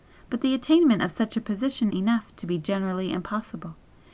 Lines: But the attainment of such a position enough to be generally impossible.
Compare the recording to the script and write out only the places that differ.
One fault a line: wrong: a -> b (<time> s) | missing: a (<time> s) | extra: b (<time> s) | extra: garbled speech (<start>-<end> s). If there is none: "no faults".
no faults